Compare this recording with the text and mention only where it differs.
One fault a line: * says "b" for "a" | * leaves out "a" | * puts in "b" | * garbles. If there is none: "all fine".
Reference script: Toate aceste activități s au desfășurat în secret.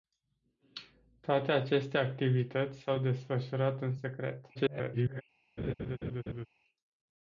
* garbles